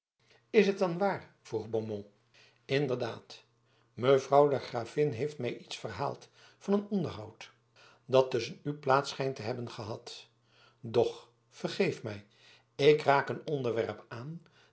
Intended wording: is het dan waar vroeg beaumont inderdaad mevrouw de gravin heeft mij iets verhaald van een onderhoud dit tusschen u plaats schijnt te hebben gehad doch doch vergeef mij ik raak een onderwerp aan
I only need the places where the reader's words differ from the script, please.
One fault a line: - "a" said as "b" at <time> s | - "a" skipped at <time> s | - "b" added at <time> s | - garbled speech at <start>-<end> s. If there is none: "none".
- "dit" said as "dat" at 8.1 s
- "doch" skipped at 11.3 s